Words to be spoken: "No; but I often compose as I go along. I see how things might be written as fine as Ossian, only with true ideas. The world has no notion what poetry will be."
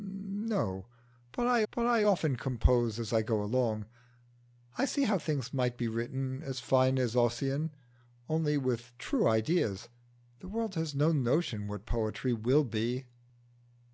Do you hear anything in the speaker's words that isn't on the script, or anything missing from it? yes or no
yes